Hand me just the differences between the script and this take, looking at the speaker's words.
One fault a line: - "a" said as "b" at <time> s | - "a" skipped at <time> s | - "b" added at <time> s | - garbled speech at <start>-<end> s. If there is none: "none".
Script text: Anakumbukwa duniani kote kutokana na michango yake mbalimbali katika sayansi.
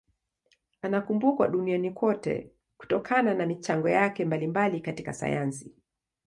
none